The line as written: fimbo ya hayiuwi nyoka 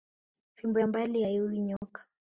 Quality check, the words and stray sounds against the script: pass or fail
fail